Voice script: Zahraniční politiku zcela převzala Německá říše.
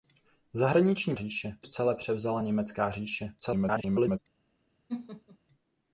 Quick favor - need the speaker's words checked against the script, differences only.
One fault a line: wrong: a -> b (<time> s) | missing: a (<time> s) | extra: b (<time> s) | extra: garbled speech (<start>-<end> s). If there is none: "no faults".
wrong: politiku -> říše (1.1 s)
extra: garbled speech (3.4-4.2 s)